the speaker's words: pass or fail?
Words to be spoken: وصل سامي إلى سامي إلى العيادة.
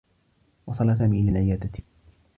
fail